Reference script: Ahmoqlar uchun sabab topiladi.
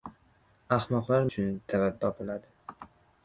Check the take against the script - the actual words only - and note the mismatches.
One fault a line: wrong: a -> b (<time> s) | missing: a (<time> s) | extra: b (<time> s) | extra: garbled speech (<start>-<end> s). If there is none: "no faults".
no faults